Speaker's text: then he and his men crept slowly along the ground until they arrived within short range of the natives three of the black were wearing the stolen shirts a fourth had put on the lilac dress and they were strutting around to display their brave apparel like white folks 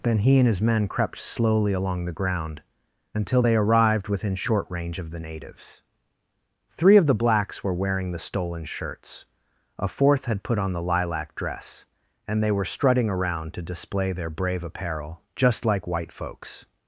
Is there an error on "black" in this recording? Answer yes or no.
yes